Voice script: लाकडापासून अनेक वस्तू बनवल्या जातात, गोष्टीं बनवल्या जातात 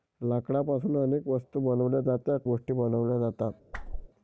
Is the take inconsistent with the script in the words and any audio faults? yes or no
yes